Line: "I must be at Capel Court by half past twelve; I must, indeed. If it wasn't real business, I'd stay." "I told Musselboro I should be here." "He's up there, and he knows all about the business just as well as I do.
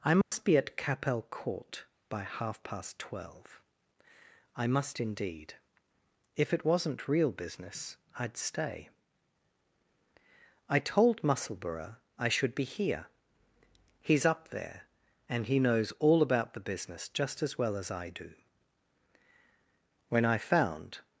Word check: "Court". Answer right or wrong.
right